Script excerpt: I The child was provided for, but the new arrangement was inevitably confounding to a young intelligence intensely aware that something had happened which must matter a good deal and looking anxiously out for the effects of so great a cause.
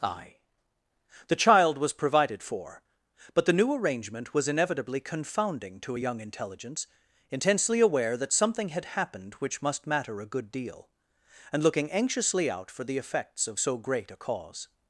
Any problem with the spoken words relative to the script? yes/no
no